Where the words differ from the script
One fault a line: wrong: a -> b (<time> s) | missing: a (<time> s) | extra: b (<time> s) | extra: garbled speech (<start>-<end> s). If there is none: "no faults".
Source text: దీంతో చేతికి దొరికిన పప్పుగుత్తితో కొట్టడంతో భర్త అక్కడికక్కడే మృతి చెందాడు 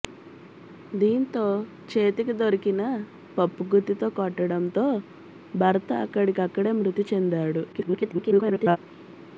extra: garbled speech (7.7-8.8 s)